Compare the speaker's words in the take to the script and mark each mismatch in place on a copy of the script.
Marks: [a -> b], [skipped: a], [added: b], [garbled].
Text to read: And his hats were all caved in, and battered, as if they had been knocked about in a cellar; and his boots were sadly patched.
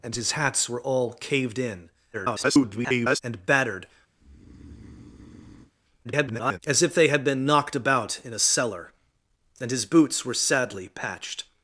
And his hats were all caved in, [garbled] and battered, [garbled] as if they had been knocked about in a cellar; and his boots were sadly patched.